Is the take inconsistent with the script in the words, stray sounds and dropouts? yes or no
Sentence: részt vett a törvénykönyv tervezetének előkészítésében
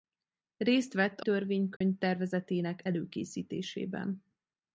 yes